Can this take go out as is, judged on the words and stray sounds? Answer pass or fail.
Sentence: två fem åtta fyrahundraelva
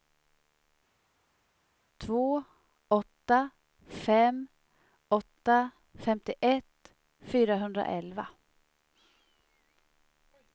fail